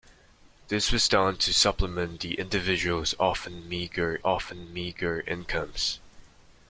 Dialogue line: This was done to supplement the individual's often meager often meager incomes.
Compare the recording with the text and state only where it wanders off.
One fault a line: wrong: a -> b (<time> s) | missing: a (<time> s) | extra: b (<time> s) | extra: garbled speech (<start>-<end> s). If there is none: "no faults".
no faults